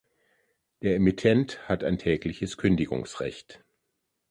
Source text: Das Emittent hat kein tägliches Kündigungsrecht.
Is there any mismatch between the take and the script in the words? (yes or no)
yes